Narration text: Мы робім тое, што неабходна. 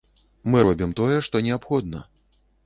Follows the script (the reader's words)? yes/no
yes